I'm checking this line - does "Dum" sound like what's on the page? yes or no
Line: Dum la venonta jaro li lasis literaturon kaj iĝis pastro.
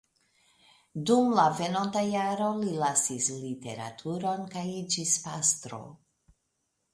yes